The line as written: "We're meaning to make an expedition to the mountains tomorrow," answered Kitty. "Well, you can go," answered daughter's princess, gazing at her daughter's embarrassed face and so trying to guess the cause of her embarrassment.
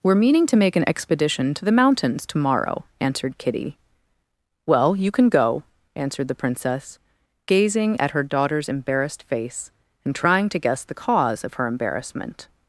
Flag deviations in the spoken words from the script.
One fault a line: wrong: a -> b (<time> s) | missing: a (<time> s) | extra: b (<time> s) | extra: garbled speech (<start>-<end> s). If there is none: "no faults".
wrong: daughter's -> the (6.3 s)
missing: so (10.2 s)